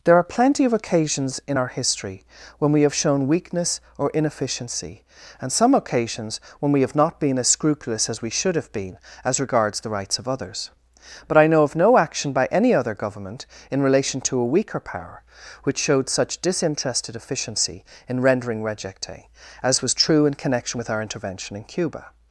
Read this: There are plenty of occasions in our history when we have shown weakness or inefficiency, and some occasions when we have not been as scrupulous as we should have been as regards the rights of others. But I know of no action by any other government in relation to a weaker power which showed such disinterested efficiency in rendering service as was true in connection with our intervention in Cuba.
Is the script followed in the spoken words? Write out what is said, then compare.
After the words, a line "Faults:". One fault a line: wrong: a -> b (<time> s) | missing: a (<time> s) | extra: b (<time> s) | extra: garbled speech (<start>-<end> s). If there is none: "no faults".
There are plenty of occasions in our history when we have shown weakness or inefficiency, and some occasions when we have not been as scrupulous as we should have been as regards the rights of others. But I know of no action by any other government in relation to a weaker power which showed such disinterested efficiency in rendering rejecte as was true in connection with our intervention in Cuba.
Faults:
wrong: service -> rejecte (18.6 s)